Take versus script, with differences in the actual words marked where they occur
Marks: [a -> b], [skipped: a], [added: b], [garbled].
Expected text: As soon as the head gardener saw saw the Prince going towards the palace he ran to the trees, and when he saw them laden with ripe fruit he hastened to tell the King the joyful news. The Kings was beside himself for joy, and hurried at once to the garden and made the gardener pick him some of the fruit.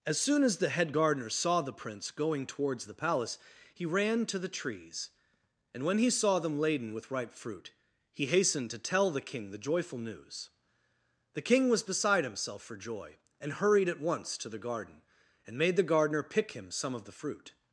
As soon as the head gardener saw [skipped: saw] the Prince going towards the palace he ran to the trees, and when he saw them laden with ripe fruit he hastened to tell the King the joyful news. The [Kings -> King] was beside himself for joy, and hurried at once to the garden and made the gardener pick him some of the fruit.